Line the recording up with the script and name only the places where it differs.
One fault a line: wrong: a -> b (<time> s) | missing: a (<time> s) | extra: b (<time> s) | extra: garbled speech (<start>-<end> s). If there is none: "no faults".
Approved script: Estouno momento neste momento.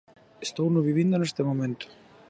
wrong: momento -> vivindo (0.9 s)